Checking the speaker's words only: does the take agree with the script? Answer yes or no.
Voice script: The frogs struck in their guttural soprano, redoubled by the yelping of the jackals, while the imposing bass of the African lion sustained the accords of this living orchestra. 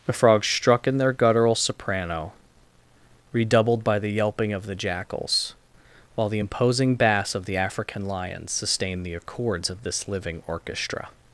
yes